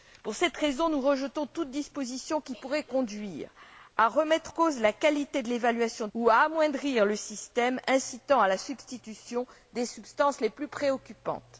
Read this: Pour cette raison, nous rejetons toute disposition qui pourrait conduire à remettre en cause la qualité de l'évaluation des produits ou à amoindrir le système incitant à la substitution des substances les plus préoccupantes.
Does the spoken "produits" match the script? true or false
false